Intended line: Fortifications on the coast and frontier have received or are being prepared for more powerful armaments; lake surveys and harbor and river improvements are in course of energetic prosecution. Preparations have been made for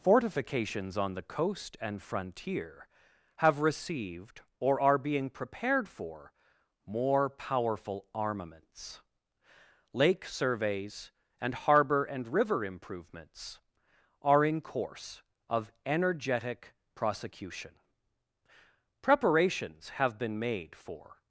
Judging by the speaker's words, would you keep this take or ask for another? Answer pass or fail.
pass